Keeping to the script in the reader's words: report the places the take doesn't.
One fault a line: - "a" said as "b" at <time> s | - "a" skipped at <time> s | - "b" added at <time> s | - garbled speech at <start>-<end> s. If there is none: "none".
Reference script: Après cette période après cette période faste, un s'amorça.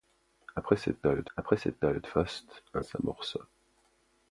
none